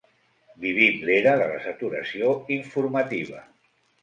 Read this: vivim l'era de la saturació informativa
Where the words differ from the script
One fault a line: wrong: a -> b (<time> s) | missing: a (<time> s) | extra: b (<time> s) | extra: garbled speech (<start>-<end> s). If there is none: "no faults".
no faults